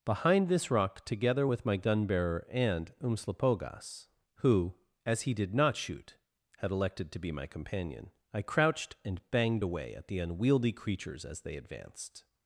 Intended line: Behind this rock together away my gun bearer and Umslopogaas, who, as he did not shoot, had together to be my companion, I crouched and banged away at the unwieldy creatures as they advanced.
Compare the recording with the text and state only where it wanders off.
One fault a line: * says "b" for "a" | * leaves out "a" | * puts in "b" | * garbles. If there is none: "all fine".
* says "with" for "away"
* says "elected" for "together"